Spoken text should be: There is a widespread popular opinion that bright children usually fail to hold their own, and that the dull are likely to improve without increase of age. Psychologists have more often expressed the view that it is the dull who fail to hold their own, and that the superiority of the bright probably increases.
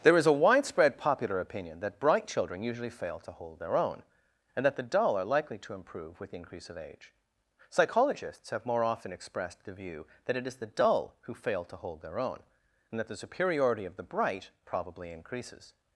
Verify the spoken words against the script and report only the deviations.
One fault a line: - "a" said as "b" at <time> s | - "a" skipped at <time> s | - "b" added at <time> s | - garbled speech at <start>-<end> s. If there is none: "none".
- "without" said as "with" at 6.2 s